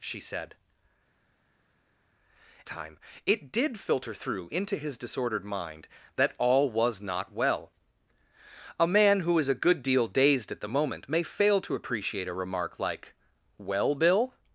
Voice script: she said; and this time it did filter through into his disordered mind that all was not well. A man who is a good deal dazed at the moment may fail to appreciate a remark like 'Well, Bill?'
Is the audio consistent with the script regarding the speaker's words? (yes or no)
no